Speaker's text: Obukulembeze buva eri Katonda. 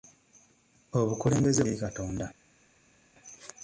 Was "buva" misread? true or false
true